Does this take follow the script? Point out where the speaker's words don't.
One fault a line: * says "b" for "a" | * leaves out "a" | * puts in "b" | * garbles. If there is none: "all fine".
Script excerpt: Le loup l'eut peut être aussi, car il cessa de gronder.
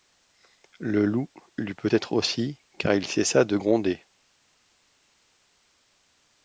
all fine